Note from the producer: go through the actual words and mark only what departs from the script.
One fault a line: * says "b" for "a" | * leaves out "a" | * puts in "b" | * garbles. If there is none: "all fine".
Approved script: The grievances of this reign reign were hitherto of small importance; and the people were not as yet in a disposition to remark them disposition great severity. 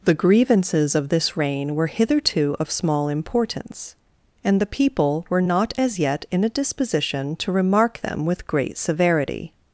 * leaves out "reign"
* says "with" for "disposition"